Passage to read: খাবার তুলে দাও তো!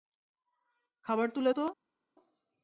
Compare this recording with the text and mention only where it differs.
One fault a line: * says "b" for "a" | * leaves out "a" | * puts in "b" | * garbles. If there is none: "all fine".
* leaves out "দাও"